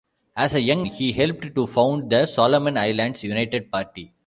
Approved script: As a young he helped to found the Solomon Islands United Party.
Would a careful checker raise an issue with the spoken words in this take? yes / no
no